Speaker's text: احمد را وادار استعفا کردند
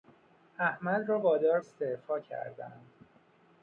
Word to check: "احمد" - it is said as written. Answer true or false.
true